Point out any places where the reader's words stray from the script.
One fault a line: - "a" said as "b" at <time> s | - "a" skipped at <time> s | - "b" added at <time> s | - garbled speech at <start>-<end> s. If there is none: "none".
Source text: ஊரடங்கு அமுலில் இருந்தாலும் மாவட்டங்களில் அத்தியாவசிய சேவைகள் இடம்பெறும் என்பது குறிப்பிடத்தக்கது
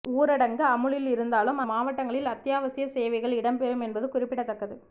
none